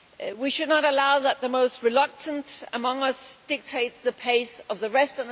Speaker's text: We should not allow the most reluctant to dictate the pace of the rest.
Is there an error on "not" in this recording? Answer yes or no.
no